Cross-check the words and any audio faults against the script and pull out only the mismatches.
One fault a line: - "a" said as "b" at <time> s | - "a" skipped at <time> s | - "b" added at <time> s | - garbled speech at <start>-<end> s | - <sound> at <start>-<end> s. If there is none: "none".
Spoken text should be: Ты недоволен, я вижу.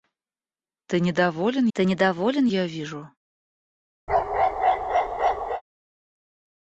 - "ты недоволен" added at 1.7 s
- bark at 4.1-5.6 s